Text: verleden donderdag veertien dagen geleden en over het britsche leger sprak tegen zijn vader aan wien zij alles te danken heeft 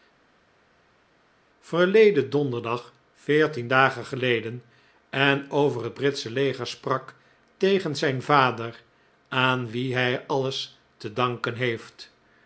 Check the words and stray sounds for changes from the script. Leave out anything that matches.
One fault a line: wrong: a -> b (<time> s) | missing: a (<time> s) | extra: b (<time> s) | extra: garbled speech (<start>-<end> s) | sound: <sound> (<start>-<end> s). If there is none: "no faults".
wrong: zij -> hij (9.9 s)